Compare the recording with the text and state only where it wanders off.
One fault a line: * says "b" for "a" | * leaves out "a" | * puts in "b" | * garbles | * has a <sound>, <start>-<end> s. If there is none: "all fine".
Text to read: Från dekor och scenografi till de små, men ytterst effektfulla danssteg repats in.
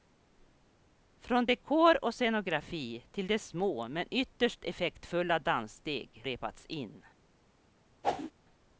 * has a whoosh, 8.0-8.3 s